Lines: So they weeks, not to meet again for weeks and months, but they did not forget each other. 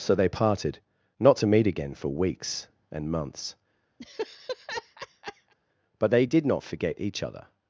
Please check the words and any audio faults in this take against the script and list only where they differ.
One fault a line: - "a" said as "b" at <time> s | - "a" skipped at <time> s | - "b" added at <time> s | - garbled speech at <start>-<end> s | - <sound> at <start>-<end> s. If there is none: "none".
- "weeks" said as "parted" at 0.3 s
- laugh at 4.0-5.5 s